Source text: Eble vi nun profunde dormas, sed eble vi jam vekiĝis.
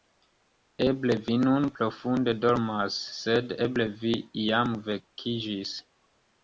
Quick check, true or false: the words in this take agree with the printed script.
true